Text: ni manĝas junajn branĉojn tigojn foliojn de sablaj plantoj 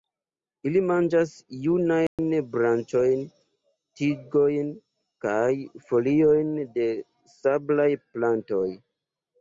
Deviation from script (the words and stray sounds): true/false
true